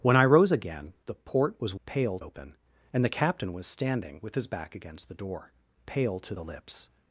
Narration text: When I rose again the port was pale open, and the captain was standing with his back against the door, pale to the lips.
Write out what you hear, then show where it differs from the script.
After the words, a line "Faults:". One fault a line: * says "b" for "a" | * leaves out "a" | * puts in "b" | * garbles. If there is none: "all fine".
When I rose again the port was pale open, and the captain was standing with his back against the door, pale to the lips.
Faults:
all fine